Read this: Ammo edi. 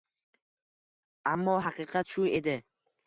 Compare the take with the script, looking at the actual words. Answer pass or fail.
fail